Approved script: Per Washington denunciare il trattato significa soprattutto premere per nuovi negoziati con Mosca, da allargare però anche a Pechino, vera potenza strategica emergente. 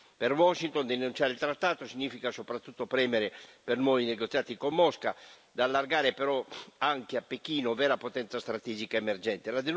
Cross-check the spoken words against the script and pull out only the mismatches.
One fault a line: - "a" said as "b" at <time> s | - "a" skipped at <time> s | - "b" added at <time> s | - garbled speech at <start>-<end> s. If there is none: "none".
none